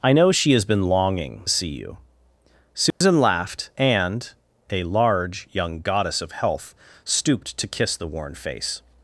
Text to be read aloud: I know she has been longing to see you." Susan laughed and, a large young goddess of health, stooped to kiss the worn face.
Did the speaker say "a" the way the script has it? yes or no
yes